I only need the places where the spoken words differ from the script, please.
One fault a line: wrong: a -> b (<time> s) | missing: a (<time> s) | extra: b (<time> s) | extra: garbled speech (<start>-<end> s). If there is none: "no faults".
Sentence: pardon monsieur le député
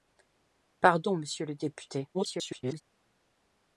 extra: garbled speech (2.1-2.8 s)